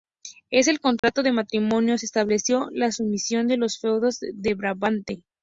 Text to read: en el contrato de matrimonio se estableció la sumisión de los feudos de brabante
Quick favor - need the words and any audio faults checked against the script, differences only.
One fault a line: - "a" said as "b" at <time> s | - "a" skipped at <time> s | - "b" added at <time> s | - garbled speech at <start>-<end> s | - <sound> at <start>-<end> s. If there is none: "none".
- dropout at 1.0-1.0 s